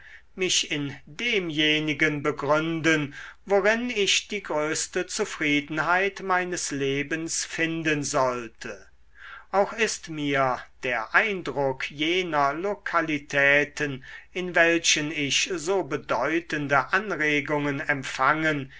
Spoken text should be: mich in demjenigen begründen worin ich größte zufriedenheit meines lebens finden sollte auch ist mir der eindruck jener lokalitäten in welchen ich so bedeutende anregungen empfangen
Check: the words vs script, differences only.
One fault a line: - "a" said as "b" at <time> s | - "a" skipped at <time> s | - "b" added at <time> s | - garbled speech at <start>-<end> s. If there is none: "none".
- "die" added at 4.3 s